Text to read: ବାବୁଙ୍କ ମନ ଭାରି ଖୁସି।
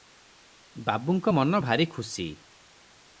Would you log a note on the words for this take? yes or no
no